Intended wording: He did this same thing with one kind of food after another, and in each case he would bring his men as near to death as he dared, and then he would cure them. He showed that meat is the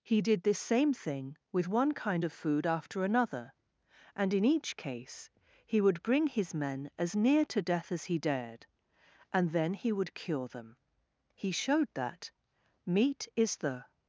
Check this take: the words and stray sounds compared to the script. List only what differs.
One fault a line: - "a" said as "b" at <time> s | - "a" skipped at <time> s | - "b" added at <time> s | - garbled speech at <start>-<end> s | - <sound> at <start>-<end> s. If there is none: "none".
none